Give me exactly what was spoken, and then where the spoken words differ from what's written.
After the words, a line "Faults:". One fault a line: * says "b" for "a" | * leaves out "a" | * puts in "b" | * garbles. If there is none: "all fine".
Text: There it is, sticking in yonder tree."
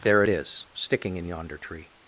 There it is, sticking in yonder tree."
Faults:
all fine